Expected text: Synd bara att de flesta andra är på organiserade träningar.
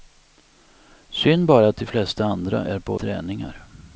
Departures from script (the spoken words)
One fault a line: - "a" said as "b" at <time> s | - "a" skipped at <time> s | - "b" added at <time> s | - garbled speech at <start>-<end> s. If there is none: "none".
- "organiserade" skipped at 2.9 s